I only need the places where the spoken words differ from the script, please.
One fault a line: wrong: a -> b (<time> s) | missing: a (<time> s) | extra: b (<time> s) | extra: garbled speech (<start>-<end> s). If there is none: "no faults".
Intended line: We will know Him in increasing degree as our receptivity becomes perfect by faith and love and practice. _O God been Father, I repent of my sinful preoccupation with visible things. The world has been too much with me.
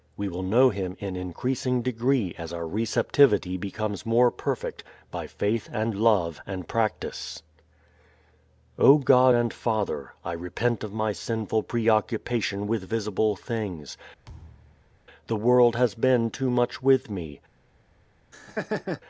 extra: more (4.0 s)
wrong: been -> and (9.3 s)